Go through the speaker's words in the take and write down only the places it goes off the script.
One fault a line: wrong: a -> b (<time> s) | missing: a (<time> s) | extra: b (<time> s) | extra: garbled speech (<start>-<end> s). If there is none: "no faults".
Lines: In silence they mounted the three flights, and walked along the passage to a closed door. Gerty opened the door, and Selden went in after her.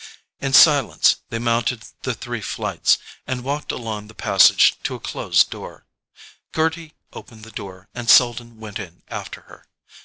no faults